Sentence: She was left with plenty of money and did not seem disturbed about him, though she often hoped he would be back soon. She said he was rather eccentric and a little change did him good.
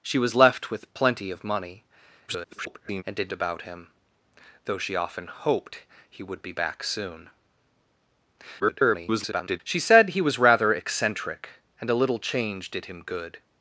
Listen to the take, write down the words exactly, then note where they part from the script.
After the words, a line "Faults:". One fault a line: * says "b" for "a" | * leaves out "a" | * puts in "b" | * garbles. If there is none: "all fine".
She was left with plenty of money [garbled] and did about him, though she often hoped he would be back soon. [garbled] She said he was rather eccentric and a little change did him good.
Faults:
* garbles
* leaves out "not seem disturbed"
* garbles